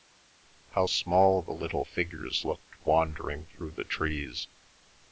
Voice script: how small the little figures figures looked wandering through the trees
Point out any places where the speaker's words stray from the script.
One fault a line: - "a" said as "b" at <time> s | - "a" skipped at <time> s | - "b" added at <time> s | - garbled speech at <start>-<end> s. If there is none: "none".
- "figures" skipped at 2.5 s